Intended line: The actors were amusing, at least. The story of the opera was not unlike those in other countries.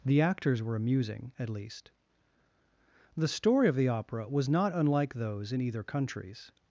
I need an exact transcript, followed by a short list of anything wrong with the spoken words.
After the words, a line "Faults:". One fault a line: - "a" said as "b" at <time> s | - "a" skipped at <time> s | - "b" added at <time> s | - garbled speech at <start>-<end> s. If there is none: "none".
The actors were amusing, at least. The story of the opera was not unlike those in either countries.
Faults:
- "other" said as "either" at 5.6 s